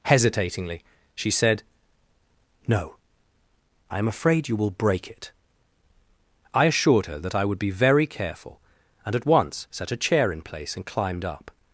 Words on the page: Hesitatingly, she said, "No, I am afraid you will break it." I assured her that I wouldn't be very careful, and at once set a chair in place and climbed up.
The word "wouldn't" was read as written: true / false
false